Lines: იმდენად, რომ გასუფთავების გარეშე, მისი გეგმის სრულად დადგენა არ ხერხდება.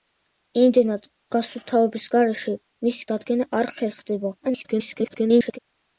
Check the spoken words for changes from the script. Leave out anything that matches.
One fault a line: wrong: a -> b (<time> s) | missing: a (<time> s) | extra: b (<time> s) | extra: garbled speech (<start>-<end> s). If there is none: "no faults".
missing: რომ (1.0 s)
missing: გეგმის სრულად (3.1 s)
extra: garbled speech (4.4-5.6 s)